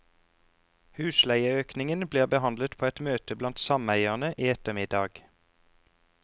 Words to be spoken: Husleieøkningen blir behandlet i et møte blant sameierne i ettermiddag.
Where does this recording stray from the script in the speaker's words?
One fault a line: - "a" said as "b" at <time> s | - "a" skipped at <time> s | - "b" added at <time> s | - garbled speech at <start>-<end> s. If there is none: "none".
- "i" said as "på" at 2.8 s